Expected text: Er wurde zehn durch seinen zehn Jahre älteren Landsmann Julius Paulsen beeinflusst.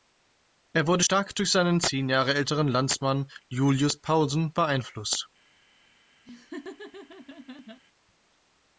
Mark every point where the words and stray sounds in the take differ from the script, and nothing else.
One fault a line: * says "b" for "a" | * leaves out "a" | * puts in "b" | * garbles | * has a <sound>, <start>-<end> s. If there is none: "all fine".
* says "stark" for "zehn"
* has a laugh, 6.3-7.8 s